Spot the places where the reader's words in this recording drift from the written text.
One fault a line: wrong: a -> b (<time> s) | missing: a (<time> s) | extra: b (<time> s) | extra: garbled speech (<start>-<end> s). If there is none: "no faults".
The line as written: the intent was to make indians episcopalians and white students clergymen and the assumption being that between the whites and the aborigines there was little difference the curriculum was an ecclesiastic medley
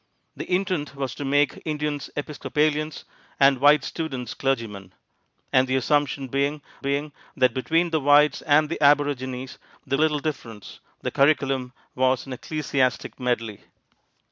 extra: being (6.8 s)
missing: was (10.0 s)